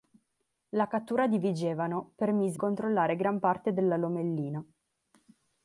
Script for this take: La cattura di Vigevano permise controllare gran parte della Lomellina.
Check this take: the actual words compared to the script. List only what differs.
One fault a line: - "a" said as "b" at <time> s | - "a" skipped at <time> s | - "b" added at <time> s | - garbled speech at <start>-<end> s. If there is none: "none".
none